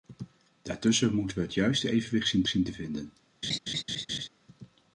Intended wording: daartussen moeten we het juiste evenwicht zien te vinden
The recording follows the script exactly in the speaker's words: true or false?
false